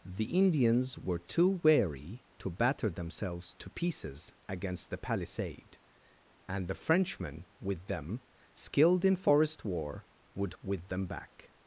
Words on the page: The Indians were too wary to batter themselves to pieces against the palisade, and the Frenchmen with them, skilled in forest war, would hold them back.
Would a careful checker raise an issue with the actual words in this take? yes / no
yes